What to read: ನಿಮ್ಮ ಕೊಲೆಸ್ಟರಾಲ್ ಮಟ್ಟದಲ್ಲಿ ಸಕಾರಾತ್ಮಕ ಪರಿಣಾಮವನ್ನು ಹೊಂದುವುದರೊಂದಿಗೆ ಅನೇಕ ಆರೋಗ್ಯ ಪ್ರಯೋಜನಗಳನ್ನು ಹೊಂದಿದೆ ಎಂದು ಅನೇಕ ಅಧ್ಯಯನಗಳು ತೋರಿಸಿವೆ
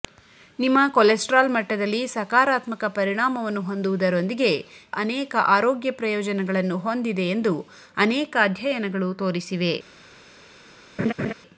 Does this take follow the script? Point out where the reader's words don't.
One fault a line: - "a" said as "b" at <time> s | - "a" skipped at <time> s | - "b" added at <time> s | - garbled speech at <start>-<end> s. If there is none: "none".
none